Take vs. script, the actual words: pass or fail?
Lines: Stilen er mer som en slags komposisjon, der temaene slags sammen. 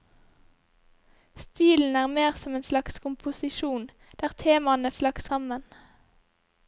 pass